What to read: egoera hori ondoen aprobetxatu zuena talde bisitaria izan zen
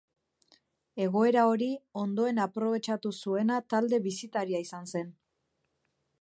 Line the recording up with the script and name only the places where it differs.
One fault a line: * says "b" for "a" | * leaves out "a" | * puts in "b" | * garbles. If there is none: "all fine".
all fine